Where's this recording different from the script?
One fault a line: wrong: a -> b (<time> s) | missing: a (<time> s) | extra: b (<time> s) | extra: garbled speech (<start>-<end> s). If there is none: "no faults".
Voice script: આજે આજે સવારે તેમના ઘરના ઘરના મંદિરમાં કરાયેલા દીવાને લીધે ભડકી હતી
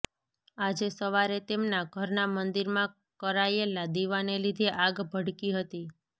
missing: આજે (0.9 s)
missing: ઘરના (2.2 s)
extra: આગ (4.8 s)